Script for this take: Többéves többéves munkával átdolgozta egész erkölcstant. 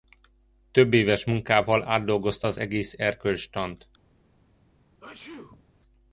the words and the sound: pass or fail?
fail